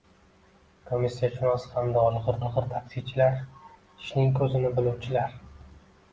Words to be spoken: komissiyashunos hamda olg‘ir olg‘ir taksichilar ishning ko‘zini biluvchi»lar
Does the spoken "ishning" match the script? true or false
true